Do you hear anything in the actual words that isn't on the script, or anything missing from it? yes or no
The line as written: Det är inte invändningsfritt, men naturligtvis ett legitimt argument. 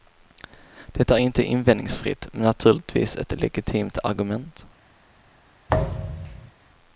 no